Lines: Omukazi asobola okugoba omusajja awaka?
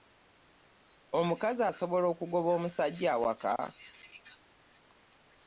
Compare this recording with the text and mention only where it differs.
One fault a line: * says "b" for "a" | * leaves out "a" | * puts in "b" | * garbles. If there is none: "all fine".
all fine